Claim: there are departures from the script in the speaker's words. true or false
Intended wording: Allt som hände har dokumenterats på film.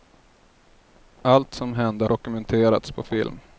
true